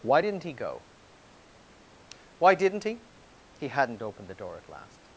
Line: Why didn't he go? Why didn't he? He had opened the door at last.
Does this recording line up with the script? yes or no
no